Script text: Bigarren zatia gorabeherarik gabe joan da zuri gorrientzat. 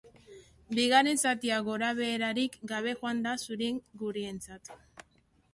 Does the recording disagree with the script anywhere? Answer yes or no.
no